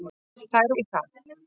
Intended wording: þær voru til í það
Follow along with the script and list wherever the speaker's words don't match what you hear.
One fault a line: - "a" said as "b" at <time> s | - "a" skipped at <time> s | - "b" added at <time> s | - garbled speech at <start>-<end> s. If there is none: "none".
- "voru til" skipped at 0.7 s